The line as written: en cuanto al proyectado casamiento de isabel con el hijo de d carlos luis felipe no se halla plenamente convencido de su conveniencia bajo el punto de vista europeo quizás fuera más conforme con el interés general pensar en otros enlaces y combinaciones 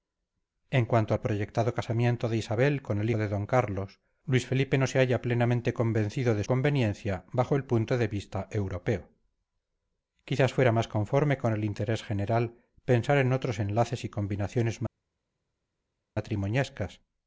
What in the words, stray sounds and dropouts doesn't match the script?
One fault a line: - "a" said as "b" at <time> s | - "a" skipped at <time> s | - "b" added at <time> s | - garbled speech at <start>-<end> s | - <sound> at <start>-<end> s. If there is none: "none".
- "hijo" skipped at 3.1 s
- "su" skipped at 6.4 s